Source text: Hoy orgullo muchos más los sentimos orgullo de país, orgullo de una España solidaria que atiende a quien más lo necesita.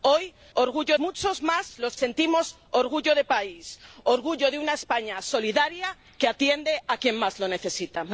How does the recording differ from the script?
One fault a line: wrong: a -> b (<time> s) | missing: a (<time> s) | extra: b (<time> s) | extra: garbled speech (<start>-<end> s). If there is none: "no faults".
no faults